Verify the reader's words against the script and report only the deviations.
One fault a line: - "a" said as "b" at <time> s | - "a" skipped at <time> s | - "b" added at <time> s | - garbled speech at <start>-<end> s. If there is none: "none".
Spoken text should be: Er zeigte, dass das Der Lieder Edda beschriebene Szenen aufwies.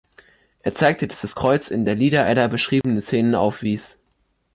- "Kreuz in" added at 1.3 s